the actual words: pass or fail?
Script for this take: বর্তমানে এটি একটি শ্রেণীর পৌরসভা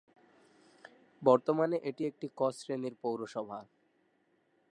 fail